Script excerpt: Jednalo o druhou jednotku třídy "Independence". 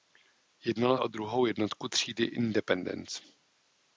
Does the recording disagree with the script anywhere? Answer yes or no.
no